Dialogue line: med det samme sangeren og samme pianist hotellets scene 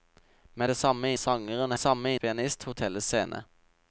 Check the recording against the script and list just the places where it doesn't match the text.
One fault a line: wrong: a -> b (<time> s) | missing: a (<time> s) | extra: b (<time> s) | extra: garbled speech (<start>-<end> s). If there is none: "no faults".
no faults